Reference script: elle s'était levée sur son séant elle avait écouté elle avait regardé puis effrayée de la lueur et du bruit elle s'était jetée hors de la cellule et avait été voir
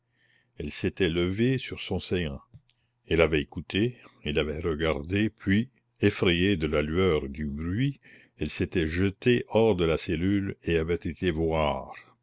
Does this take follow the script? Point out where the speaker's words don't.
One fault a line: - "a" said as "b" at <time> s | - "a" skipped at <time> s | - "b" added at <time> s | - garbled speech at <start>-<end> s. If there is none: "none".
none